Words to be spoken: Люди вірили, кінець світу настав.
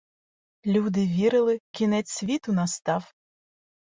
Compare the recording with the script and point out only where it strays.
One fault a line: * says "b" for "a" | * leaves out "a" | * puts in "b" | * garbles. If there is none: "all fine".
all fine